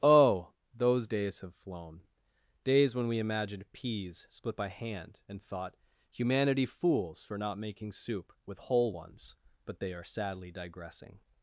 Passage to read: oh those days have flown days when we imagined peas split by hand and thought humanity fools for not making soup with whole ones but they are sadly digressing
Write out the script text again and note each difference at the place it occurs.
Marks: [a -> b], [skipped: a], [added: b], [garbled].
oh those days have flown days when we imagined peas split by hand and thought humanity fools for not making soup with whole ones but they are sadly digressing